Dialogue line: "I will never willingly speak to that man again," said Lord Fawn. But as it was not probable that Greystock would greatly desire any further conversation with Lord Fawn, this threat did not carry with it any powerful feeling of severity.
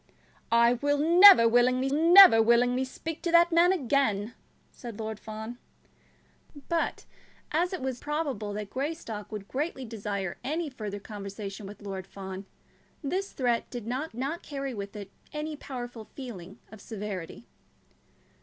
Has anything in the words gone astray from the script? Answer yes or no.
yes